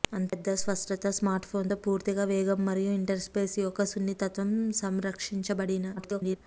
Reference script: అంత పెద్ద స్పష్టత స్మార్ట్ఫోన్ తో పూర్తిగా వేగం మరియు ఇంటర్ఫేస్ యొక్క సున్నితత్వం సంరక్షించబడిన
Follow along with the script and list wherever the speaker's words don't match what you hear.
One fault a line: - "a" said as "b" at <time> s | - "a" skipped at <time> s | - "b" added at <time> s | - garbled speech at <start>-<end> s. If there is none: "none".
- garbled speech at 6.0-6.4 s